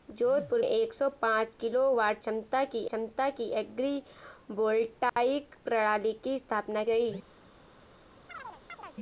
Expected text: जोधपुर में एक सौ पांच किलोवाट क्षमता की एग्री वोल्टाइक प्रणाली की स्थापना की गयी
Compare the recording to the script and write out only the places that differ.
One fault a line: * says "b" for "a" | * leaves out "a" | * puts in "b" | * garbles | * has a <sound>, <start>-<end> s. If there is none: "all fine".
* leaves out "में"
* puts in "क्षमता की"
* has a dropout, 5.1-5.2 s
* leaves out "की"
* has a chirp, 8.3-9.0 s